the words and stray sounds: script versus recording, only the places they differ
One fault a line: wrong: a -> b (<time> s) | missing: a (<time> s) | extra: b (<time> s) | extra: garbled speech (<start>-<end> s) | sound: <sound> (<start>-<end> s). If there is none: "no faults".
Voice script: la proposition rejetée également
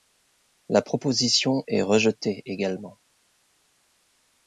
extra: est (1.7 s)